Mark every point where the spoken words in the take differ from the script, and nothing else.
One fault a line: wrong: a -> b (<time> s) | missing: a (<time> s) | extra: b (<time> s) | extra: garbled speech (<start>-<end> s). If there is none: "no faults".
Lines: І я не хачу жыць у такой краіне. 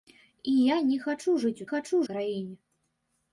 wrong: такой -> хачу (1.7 s)